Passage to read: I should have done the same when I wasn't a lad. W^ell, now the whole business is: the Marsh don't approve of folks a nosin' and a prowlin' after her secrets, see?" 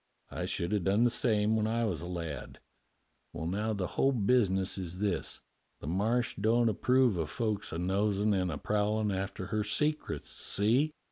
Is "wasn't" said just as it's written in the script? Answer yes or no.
no